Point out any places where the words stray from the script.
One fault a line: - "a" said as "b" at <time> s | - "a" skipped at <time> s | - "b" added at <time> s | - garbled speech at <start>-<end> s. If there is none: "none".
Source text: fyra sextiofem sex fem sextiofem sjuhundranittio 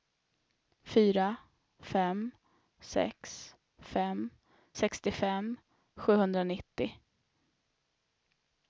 - "sextiofem" said as "fem" at 1.9 s